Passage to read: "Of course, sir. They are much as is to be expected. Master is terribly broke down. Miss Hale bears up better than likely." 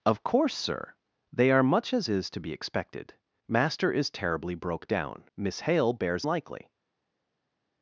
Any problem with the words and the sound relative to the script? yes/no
yes